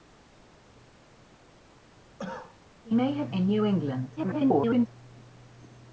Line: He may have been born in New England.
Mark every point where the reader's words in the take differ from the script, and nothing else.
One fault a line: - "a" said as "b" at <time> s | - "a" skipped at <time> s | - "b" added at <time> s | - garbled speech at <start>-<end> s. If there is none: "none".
- "been born" skipped at 3.3 s
- garbled speech at 4.2-4.9 s